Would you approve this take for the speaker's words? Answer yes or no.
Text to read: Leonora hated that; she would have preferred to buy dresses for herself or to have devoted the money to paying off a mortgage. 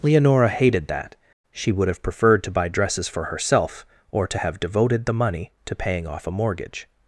yes